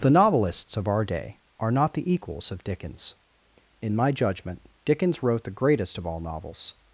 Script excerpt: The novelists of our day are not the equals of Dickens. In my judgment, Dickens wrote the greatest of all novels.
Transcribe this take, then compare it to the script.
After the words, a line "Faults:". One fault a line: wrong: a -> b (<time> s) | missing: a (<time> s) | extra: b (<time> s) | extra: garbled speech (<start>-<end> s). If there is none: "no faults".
The novelists of our day are not the equals of Dickens. In my judgment, Dickens wrote the greatest of all novels.
Faults:
no faults